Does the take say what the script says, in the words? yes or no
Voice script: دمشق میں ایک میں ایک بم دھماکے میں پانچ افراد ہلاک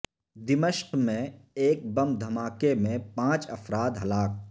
no